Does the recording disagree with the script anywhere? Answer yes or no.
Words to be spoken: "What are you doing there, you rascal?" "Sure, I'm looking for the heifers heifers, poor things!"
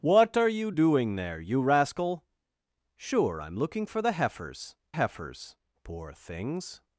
no